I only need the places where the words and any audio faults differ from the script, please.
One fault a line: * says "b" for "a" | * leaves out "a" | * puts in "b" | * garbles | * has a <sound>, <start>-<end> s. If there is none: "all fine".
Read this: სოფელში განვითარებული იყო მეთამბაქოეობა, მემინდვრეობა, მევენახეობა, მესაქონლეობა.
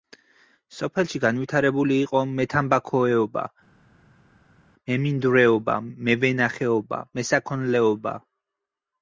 all fine